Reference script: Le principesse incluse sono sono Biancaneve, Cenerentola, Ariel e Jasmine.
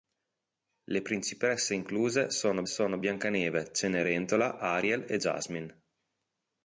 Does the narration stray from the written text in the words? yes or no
no